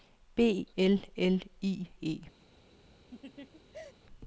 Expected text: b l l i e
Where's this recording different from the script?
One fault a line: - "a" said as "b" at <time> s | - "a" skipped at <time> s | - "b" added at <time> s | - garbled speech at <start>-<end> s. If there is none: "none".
none